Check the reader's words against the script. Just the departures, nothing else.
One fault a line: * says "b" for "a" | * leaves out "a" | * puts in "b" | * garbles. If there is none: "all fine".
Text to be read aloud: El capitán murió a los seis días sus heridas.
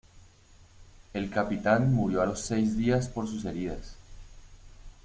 * puts in "por"